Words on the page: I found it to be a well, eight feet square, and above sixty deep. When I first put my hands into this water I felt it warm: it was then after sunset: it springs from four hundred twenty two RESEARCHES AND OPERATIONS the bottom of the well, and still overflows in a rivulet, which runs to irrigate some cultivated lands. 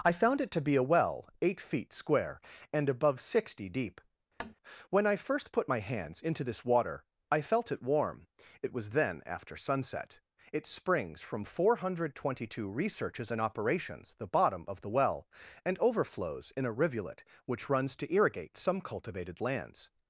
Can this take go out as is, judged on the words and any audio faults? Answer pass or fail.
fail